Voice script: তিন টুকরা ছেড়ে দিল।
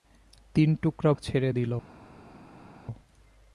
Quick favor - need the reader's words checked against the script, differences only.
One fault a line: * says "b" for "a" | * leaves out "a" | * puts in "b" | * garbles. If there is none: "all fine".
all fine